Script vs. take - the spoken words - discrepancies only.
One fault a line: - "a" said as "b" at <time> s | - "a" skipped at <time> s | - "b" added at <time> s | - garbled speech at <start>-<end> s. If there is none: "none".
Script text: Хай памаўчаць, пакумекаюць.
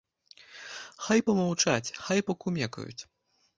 - "хай" added at 2.0 s